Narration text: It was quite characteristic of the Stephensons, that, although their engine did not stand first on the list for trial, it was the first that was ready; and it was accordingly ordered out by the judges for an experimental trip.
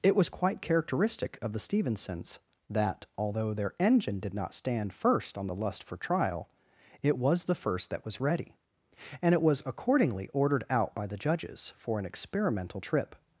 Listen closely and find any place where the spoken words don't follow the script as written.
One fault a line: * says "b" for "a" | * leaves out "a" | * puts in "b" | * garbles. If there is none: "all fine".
* says "lust" for "list"